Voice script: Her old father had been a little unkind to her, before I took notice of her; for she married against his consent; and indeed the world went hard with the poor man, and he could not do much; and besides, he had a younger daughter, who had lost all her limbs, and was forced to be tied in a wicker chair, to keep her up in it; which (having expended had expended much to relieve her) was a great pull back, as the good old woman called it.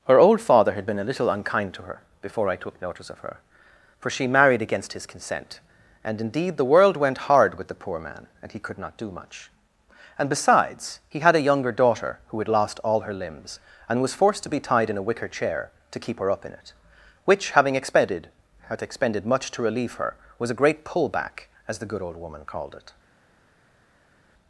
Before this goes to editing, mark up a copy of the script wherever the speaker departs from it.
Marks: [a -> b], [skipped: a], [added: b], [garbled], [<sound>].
Her old father had been a little unkind to her, before I took notice of her; for she married against his consent; and indeed the world went hard with the poor man, and he could not do much; and besides, he had a younger daughter, who had lost all her limbs, and was forced to be tied in a wicker chair, to keep her up in it; which (having expended had expended much to relieve her) was a great pull back, as the good old woman called it.